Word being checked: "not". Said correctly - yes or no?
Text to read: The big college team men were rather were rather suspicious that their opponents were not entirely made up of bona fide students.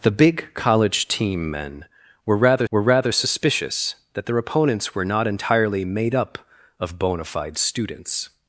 yes